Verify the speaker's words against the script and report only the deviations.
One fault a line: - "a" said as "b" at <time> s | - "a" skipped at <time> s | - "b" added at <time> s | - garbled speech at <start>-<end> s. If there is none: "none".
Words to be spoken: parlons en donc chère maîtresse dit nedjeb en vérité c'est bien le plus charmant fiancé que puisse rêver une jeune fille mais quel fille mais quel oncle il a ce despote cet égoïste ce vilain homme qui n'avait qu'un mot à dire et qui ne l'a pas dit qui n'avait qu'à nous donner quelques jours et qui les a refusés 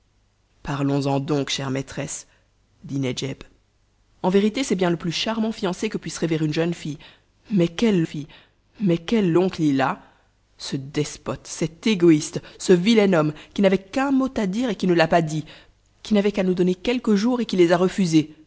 none